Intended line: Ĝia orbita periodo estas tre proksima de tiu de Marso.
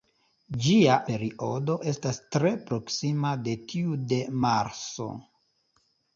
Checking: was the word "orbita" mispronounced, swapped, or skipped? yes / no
yes